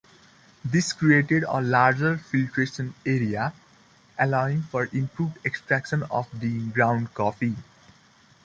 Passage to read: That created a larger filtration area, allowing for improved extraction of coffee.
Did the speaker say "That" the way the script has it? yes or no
no